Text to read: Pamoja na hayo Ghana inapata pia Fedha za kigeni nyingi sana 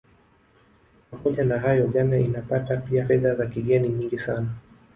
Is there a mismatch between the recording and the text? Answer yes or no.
no